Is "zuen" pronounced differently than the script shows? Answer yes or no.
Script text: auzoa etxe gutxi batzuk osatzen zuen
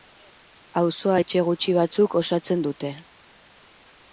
yes